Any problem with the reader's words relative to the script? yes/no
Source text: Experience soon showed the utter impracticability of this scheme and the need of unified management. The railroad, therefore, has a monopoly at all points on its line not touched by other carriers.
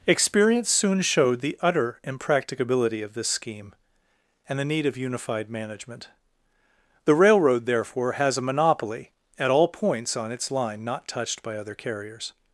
no